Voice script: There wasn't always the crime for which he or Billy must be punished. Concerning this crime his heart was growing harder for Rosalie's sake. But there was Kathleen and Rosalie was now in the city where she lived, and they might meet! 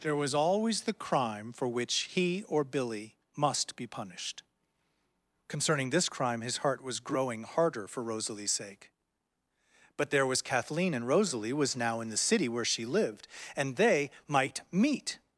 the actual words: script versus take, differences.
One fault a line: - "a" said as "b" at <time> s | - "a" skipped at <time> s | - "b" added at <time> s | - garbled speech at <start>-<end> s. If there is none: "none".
- "wasn't" said as "was" at 0.1 s